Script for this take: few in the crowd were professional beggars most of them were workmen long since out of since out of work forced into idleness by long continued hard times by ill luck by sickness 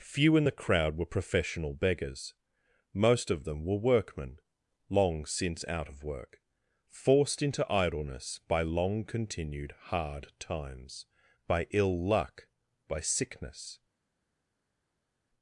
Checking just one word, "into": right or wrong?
right